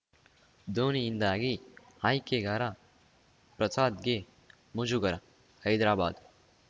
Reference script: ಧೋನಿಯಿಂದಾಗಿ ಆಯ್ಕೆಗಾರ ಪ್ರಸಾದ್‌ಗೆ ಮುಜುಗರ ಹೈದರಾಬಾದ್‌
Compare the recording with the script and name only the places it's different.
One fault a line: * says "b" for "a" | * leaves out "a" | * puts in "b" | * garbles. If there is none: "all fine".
all fine